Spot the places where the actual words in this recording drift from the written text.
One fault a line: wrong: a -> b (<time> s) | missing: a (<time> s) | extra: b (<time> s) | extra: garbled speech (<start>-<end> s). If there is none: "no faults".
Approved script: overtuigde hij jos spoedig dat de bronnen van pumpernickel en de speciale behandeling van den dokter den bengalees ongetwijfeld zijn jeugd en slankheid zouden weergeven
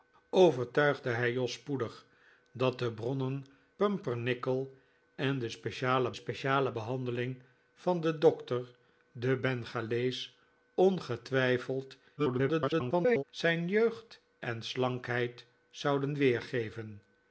missing: van (3.5 s)
extra: speciale (6.1 s)
extra: garbled speech (12.2-13.2 s)